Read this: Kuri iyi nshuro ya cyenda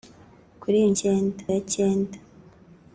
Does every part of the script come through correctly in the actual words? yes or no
no